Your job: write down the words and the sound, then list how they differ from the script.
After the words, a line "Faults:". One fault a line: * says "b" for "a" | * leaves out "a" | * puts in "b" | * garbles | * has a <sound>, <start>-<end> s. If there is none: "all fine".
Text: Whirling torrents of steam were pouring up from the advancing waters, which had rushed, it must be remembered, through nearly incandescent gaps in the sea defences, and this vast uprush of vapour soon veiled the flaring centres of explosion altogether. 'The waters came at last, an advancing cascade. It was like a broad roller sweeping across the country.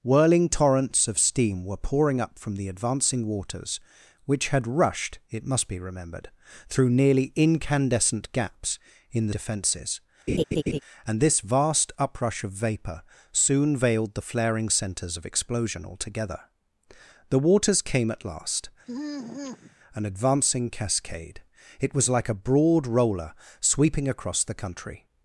Whirling torrents of steam were pouring up from the advancing waters, which had rushed, it must be remembered, through nearly incandescent gaps in the defences, and this vast uprush of vapour soon veiled the flaring centres of explosion altogether. 'The waters came at last, an advancing cascade. It was like a broad roller sweeping across the country.
Faults:
* leaves out "sea"
* has a laugh, 10.3-10.8 s
* has a sigh, 18.9-19.8 s